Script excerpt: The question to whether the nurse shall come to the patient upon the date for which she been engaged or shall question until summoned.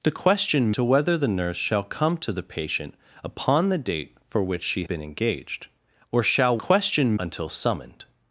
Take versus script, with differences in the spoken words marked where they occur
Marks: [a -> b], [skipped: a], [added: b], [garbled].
The question to whether the nurse shall come to the patient upon the date for which she been engaged or shall question until summoned.